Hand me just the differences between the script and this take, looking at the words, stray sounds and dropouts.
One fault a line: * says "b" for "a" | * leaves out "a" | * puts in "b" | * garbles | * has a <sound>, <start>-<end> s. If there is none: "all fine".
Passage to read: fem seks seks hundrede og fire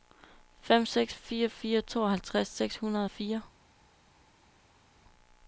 * puts in "fire fire tooghalvtreds"